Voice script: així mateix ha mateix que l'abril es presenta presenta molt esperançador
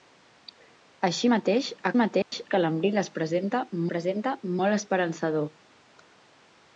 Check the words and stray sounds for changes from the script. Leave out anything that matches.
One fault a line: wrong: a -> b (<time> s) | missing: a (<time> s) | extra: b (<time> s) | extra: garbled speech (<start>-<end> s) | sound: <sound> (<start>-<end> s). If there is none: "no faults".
sound: dropout (2.2-2.3 s)